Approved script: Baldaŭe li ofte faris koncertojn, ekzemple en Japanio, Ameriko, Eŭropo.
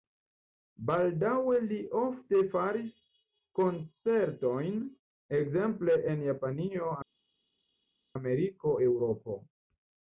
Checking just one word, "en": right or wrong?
right